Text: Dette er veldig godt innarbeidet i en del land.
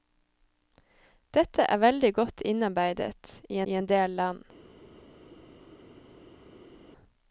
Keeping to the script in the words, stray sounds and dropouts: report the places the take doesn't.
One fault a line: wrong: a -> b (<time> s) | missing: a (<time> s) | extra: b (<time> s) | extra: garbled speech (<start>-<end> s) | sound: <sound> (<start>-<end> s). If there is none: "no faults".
extra: i (3.6 s)